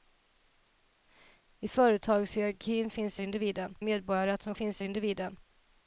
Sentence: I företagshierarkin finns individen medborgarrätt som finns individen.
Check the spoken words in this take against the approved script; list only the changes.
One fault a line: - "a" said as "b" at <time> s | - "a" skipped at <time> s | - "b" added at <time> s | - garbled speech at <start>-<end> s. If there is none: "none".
none